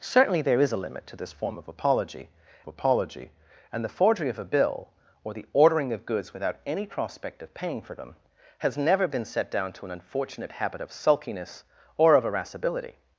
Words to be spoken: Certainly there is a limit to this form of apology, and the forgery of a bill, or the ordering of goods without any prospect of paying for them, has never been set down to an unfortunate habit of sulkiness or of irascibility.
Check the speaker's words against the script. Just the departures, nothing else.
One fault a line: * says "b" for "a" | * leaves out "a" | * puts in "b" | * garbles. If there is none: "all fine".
* puts in "apology"